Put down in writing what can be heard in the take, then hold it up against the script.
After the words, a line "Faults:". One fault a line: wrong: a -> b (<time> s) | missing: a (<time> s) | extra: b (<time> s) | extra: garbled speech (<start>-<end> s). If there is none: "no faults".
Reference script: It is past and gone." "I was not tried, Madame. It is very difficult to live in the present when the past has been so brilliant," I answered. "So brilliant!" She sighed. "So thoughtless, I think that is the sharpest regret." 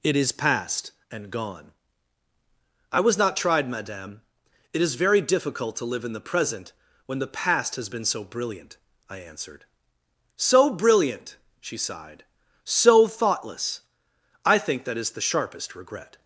It is past and gone." "I was not tried, Madame. It is very difficult to live in the present when the past has been so brilliant," I answered. "So brilliant!" She sighed. "So thoughtless, I think that is the sharpest regret."
Faults:
no faults